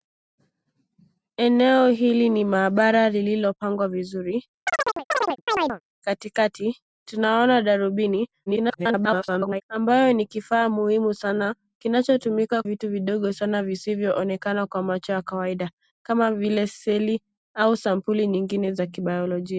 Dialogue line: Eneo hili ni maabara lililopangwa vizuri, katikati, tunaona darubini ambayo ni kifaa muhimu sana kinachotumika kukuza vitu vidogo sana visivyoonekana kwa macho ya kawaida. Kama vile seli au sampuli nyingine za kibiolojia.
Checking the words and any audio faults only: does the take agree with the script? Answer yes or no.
no